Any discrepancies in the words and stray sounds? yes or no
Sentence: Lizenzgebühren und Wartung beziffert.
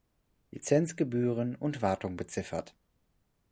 no